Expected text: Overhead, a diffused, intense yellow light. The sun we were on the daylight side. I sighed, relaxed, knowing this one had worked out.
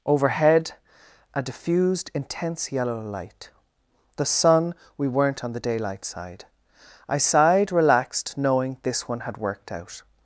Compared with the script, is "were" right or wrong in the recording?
wrong